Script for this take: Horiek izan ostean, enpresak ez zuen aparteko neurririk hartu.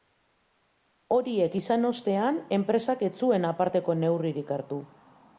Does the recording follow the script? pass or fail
pass